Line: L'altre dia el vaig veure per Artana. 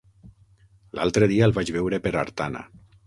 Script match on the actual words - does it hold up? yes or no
yes